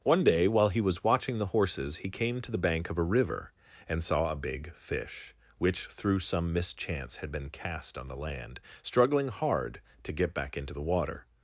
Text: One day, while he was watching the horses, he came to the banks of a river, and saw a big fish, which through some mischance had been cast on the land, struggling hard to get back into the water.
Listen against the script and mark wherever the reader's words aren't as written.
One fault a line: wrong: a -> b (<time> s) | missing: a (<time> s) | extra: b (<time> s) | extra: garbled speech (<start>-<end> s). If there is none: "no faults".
wrong: banks -> bank (2.6 s)